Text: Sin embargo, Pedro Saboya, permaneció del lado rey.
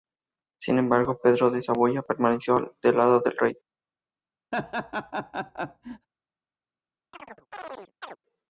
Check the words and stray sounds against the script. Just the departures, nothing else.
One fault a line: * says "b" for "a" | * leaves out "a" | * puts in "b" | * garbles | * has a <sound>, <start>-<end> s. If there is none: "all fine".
* puts in "de"
* puts in "del"
* has a laugh, 4.5-6.1 s
* has a chirp, 7.1-8.2 s